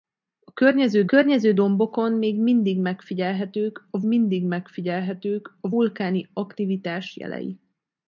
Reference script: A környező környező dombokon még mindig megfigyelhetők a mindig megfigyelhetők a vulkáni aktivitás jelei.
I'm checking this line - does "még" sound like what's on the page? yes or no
yes